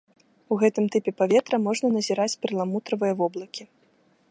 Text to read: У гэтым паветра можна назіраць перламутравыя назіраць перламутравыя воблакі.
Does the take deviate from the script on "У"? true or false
false